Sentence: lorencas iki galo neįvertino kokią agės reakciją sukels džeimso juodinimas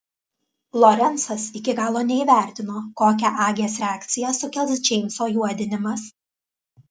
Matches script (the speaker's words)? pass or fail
pass